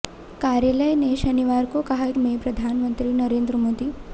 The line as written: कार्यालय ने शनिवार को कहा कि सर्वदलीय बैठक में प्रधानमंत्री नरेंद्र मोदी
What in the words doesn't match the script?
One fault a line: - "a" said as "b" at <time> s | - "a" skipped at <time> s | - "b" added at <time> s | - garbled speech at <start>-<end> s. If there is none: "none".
- "कि सर्वदलीय बैठक" skipped at 2.1 s